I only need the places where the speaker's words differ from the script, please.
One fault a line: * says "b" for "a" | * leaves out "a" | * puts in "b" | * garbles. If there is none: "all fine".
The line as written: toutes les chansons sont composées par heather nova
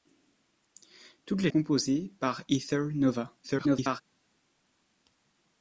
* leaves out "chansons sont"
* garbles